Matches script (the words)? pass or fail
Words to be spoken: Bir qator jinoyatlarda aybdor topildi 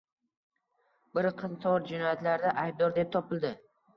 fail